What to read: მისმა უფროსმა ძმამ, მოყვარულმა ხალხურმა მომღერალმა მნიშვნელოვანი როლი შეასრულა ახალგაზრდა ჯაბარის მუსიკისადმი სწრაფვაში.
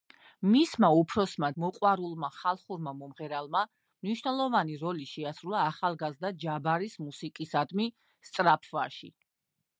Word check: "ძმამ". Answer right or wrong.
wrong